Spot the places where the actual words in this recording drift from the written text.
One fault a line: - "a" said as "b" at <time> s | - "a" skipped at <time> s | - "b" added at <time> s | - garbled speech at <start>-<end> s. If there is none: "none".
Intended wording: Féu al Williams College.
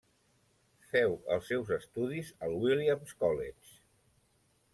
- "els seus estudis" added at 1.4 s